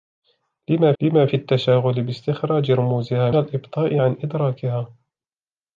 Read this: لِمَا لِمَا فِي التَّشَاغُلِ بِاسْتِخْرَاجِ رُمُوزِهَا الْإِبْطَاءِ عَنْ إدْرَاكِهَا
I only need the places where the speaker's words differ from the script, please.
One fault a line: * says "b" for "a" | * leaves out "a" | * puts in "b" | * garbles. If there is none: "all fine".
all fine